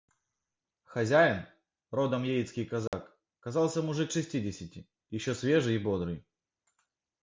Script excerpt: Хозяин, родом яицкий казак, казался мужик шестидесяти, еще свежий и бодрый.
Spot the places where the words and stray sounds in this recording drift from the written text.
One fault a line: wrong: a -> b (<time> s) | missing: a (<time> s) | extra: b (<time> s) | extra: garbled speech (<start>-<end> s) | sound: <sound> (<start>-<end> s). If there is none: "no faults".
sound: dropout (2.9-2.9 s)